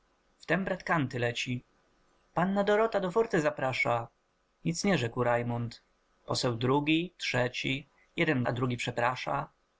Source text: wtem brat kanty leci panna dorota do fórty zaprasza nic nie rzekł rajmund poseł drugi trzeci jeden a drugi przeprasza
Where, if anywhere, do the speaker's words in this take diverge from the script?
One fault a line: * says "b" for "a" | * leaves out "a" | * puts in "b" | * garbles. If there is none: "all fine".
all fine